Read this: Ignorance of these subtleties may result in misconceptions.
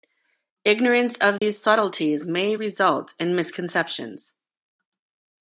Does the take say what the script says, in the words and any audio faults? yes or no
no